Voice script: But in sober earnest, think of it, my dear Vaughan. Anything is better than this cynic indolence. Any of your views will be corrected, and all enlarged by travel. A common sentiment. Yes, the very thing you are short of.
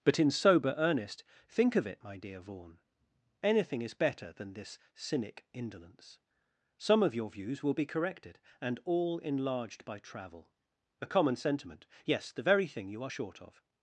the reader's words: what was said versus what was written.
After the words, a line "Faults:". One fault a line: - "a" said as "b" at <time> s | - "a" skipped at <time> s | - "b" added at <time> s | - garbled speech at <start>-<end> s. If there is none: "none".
But in sober earnest, think of it, my dear Vaughan. Anything is better than this cynic indolence. Some of your views will be corrected, and all enlarged by travel. A common sentiment. Yes, the very thing you are short of.
Faults:
- "Any" said as "Some" at 6.8 s